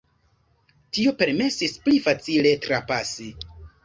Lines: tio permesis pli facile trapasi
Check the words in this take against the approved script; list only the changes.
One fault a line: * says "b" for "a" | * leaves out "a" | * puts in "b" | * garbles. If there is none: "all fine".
all fine